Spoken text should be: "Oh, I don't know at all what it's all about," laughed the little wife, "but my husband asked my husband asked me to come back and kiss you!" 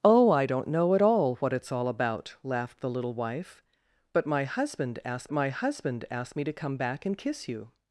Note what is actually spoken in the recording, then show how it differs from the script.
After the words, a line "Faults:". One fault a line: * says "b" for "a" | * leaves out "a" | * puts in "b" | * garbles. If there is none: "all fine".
"Oh, I don't know at all what it's all about," laughed the little wife, "but my husband asked my husband asked me to come back and kiss you!"
Faults:
all fine